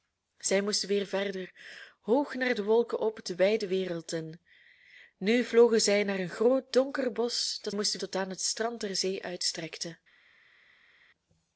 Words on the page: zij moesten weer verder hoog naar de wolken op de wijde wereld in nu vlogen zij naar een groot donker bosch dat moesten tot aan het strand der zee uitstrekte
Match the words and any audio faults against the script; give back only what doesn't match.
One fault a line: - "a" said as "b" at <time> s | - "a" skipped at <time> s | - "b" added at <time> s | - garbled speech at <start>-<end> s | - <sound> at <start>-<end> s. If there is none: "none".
none